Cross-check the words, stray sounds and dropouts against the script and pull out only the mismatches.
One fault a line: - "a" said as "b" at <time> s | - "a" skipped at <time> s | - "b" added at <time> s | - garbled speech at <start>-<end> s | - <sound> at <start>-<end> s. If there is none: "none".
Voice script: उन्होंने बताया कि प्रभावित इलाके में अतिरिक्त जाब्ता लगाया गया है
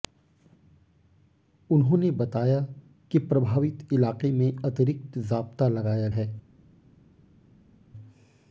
- "गया" skipped at 6.1 s